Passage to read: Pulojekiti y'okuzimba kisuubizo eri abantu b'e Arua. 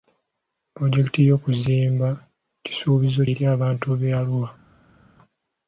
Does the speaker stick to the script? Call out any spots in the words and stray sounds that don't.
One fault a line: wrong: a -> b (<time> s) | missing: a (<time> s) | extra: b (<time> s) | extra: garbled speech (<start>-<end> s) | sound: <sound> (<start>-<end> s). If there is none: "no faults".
no faults